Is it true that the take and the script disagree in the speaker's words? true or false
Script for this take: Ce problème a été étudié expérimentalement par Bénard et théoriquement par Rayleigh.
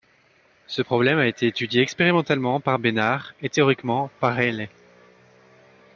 false